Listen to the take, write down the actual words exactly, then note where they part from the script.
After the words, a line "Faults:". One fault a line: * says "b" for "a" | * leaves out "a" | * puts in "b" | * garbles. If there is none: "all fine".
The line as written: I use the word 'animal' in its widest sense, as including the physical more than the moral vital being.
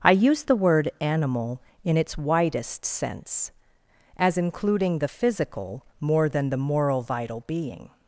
I use the word 'animal' in its widest sense, as including the physical more than the moral vital being.
Faults:
all fine